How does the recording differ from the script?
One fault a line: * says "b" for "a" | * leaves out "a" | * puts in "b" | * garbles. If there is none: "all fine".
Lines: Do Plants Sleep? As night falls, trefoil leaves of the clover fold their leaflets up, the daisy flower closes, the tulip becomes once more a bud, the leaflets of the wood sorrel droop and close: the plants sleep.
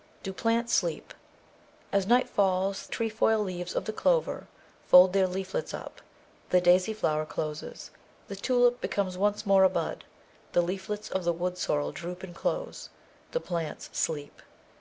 all fine